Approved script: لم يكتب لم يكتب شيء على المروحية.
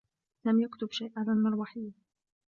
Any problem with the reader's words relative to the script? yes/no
yes